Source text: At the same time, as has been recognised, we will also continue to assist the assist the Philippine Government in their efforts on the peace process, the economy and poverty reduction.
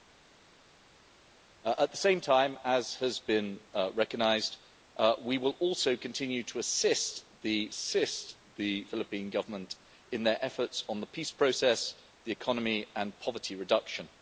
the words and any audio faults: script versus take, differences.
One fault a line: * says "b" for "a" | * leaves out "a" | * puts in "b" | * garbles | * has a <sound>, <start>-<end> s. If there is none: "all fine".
all fine